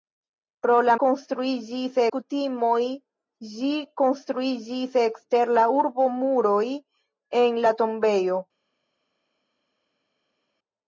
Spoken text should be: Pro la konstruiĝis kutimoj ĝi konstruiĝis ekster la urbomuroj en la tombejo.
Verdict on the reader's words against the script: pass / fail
pass